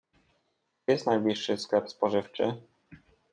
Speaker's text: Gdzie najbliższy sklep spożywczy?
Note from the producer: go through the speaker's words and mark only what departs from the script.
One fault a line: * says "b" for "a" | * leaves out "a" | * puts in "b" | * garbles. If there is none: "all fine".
* puts in "jest"